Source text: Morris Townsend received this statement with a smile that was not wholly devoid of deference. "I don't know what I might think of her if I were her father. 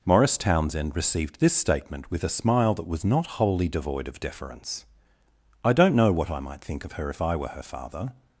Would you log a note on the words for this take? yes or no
no